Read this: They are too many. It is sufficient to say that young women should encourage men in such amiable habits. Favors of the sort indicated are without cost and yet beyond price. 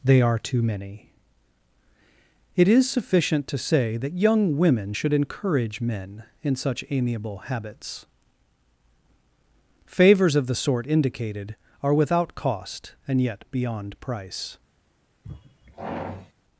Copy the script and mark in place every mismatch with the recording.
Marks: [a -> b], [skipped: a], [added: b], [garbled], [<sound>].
They are too many. It is sufficient to say that young women should encourage men in such amiable habits. Favors of the sort indicated are without cost and yet beyond price. [sigh]